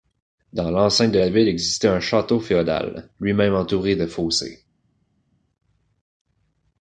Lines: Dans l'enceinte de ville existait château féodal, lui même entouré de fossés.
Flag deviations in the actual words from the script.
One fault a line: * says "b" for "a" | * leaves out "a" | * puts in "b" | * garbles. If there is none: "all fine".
* puts in "la"
* puts in "un"